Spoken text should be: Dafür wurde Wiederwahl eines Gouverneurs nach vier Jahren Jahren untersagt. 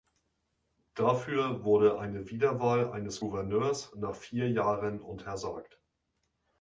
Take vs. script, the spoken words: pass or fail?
fail